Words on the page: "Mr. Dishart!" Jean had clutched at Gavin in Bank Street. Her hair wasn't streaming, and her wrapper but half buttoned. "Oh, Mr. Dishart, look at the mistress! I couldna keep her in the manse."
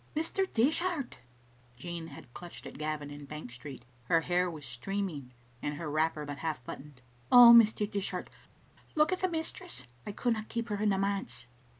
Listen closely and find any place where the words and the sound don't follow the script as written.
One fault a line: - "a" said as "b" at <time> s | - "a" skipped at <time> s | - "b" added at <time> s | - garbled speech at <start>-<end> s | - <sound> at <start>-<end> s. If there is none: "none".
- "wasn't" said as "was" at 4.5 s